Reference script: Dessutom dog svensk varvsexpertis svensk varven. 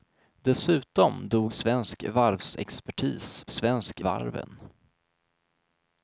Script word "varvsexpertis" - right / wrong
right